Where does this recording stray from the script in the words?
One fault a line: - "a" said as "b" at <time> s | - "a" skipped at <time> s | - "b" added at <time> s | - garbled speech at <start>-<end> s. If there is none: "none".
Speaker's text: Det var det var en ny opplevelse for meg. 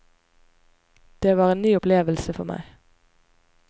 - "det var" skipped at 1.5 s